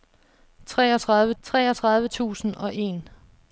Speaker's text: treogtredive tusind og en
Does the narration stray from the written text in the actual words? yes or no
yes